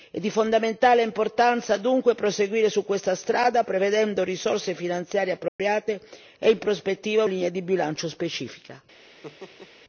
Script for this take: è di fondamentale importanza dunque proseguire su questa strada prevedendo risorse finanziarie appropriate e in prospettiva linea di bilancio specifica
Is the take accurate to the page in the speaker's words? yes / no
yes